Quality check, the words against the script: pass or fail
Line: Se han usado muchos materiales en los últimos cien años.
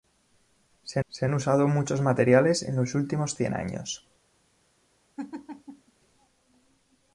fail